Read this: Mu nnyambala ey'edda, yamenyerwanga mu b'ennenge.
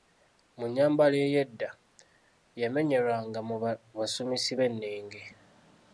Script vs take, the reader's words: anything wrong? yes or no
yes